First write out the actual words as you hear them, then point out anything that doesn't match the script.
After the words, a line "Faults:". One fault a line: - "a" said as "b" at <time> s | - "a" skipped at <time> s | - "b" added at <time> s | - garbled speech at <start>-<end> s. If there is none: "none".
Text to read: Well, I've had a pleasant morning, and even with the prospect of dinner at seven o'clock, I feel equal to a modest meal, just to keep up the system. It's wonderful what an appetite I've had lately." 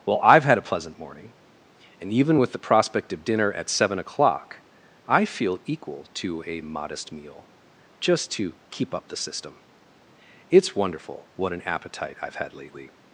Well, I've had a pleasant morning, and even with the prospect of dinner at seven o'clock, I feel equal to a modest meal, just to keep up the system. It's wonderful what an appetite I've had lately."
Faults:
none